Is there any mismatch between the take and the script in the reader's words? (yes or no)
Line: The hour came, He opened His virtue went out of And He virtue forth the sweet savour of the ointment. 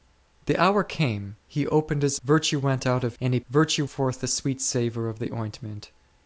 no